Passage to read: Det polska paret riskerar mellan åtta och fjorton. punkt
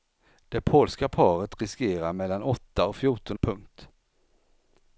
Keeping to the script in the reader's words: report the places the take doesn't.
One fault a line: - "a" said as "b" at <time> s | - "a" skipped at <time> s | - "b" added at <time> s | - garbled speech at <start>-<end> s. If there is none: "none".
none